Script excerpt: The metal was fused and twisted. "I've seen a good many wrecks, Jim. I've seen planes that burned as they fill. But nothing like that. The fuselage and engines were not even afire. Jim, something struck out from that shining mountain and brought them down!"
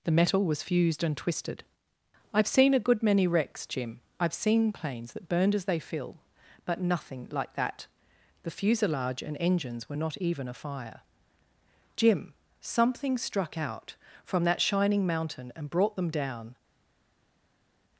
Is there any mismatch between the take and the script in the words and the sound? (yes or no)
no